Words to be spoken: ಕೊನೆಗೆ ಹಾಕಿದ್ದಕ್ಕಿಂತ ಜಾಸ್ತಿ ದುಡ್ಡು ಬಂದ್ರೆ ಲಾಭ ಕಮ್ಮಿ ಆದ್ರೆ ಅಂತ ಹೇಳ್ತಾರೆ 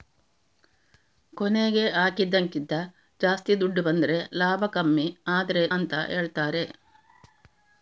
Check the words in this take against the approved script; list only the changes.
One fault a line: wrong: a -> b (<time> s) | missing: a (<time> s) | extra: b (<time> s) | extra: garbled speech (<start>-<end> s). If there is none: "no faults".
no faults